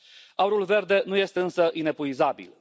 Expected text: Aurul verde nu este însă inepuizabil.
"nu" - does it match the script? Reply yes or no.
yes